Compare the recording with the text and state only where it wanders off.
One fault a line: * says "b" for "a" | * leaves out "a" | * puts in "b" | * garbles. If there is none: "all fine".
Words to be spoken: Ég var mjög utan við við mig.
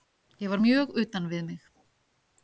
* leaves out "við"